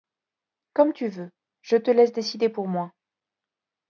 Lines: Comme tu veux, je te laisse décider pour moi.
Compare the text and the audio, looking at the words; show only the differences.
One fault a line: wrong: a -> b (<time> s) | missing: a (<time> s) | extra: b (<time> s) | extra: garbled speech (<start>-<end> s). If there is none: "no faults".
no faults